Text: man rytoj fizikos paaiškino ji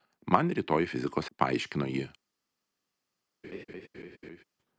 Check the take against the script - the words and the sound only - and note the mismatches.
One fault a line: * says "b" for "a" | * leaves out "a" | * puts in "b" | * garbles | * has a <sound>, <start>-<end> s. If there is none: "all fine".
* has a laugh, 3.4-4.4 s